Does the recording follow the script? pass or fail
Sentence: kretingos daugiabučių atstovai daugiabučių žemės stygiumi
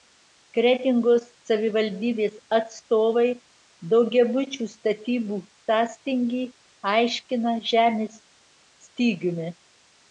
fail